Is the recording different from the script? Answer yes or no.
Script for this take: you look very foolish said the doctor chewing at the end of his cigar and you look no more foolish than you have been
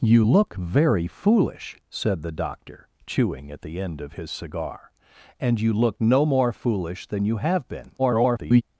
yes